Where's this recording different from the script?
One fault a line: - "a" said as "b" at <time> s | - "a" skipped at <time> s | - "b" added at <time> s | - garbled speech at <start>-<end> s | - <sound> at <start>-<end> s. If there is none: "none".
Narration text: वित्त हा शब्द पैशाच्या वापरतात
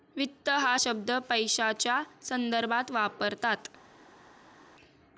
- "संदर्भात" added at 2.2 s